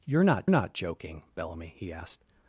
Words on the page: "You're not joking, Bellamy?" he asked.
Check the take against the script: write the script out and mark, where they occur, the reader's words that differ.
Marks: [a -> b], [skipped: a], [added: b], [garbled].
"You're not [added: not] joking, Bellamy?" he asked.